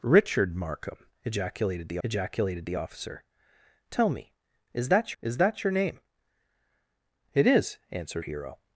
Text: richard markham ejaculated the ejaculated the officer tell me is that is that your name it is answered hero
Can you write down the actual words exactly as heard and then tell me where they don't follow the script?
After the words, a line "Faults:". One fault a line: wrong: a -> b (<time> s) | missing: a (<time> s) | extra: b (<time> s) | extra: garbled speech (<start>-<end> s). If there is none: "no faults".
richard markham ejaculated the ejaculated the officer tell me is that is that your name it is answered hero
Faults:
no faults